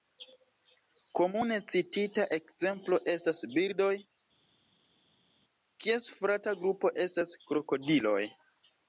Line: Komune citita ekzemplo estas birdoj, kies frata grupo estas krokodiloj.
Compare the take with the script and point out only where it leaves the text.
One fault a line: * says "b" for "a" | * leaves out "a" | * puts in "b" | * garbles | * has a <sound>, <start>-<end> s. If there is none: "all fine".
all fine